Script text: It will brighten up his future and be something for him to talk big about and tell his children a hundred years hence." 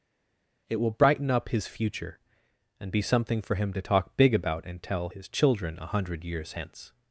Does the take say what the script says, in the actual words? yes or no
yes